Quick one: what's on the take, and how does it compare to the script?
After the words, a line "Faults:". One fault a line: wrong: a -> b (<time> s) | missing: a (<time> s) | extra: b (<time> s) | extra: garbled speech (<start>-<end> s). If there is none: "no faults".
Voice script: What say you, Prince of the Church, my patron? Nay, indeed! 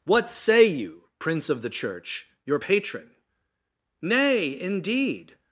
What say you, Prince of the Church, your patron? Nay, indeed!
Faults:
wrong: my -> your (2.4 s)